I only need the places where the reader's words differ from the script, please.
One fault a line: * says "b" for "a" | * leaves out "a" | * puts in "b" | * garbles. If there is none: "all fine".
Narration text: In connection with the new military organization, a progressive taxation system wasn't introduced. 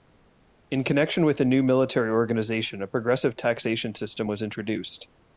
* says "was" for "wasn't"